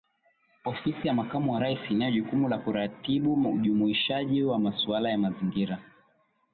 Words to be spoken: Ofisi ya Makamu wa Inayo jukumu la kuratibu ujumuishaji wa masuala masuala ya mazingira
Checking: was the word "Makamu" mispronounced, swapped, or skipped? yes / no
no